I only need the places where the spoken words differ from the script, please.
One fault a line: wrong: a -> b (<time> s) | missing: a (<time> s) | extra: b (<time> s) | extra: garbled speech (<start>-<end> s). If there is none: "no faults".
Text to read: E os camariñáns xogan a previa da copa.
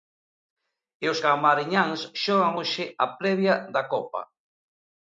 extra: hoxe (2.6 s)